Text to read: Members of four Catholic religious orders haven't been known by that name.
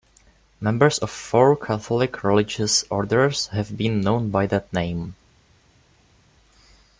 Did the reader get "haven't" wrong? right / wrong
wrong